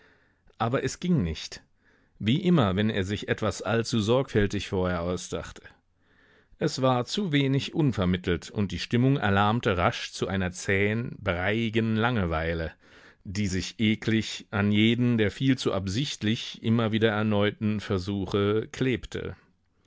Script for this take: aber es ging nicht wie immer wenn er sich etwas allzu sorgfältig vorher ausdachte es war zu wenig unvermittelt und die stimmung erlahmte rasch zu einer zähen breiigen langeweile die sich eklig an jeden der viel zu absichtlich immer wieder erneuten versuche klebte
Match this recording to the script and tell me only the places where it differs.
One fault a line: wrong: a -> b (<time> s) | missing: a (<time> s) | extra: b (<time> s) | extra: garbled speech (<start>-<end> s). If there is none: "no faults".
no faults